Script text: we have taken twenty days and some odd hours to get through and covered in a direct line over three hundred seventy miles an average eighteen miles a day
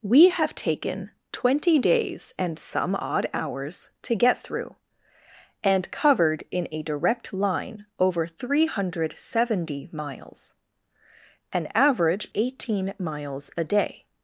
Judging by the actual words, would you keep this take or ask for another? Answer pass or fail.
pass